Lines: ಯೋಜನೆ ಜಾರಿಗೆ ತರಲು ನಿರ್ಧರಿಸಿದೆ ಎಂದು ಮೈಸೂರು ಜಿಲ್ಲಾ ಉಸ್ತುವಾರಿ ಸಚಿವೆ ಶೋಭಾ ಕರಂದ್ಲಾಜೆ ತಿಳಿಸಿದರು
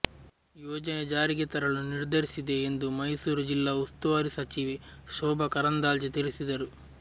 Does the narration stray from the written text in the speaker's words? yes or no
no